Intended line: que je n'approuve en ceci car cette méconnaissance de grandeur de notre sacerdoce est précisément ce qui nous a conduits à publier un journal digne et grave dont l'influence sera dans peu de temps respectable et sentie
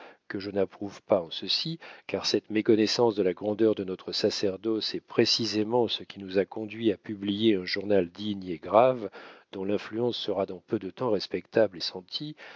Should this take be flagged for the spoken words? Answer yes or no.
yes